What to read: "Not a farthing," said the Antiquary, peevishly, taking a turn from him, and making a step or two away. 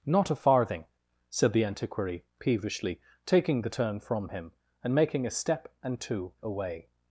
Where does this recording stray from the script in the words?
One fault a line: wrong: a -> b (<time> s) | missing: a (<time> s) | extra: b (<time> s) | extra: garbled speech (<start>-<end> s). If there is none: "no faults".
wrong: a -> the (3.6 s)
wrong: or -> and (5.8 s)